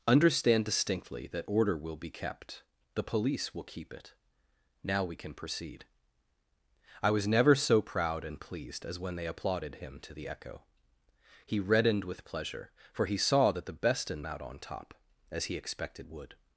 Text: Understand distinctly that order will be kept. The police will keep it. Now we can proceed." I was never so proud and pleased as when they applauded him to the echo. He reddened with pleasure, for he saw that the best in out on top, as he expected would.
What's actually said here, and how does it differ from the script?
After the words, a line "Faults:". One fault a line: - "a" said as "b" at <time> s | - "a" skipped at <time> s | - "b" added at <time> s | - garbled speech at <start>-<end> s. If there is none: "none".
Understand distinctly that order will be kept. The police will keep it. Now we can proceed." I was never so proud and pleased as when they applauded him to the echo. He reddened with pleasure, for he saw that the best in out on top, as he expected would.
Faults:
none